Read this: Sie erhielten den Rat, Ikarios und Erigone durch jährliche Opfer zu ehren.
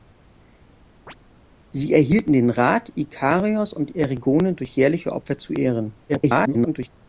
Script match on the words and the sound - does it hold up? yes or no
no